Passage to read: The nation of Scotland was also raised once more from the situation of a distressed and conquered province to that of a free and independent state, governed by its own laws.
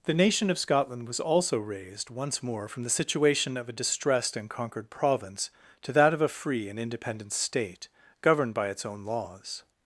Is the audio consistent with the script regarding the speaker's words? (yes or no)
yes